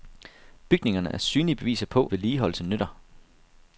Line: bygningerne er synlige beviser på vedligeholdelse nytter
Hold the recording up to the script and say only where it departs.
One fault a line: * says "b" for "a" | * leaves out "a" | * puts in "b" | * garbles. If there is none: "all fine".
all fine